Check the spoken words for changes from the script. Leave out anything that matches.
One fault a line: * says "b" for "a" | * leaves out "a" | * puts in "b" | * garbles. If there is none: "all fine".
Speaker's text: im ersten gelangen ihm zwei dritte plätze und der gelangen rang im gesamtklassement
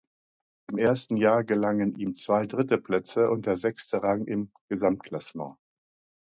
* puts in "jahr"
* says "sechste" for "gelangen"